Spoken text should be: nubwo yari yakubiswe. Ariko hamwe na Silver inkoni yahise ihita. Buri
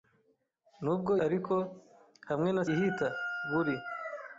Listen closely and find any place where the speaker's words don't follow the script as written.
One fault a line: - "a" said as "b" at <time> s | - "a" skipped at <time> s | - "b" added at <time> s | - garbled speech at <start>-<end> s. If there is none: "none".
- "yari yakubiswe" skipped at 1.1 s
- "Silver inkoni yahise" skipped at 2.6 s